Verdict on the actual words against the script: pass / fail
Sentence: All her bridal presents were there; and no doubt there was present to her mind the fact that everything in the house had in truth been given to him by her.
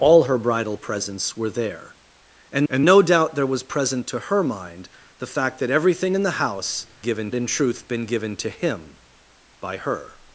fail